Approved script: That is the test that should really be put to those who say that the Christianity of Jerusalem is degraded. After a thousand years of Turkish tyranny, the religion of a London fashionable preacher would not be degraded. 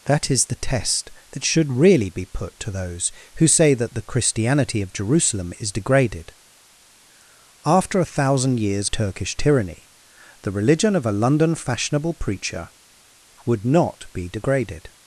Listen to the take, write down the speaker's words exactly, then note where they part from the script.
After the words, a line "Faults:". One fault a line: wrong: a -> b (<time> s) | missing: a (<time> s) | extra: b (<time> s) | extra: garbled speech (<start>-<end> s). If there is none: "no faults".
That is the test that should really be put to those who say that the Christianity of Jerusalem is degraded. After a thousand years Turkish tyranny, the religion of a London fashionable preacher would not be degraded.
Faults:
missing: of (8.9 s)